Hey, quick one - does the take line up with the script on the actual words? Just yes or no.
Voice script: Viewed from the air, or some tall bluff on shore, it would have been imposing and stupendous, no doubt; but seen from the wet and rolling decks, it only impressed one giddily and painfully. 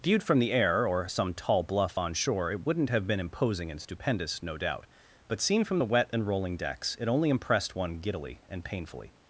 no